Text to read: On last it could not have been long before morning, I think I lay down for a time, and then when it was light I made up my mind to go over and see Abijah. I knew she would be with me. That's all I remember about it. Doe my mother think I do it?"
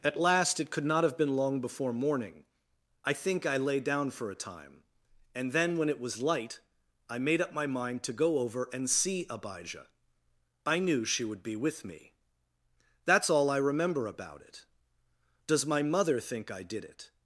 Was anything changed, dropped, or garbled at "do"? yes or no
yes